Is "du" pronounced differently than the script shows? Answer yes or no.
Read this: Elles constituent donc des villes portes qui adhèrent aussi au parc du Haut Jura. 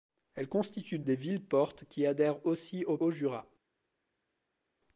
yes